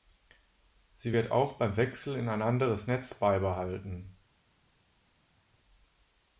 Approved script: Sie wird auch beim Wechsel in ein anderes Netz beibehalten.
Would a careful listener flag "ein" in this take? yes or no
no